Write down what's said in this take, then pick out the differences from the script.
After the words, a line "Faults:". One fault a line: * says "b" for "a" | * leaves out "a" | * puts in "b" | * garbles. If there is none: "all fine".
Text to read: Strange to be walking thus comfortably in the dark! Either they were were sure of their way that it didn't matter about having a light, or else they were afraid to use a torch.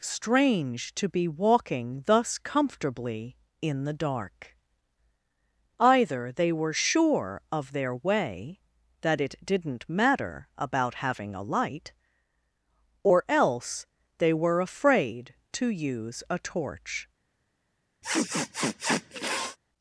Strange to be walking thus comfortably in the dark! Either they were sure of their way that it didn't matter about having a light, or else they were afraid to use a torch.
Faults:
* leaves out "were"